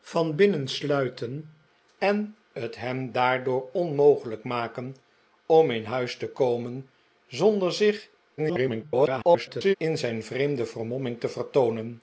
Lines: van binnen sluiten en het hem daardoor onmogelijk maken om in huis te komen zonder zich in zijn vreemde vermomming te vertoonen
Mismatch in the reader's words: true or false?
true